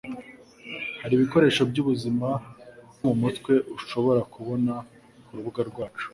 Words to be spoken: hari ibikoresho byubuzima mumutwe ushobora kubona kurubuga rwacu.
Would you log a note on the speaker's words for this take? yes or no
no